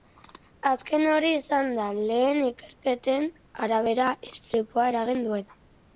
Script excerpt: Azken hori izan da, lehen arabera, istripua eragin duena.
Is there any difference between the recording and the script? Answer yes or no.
yes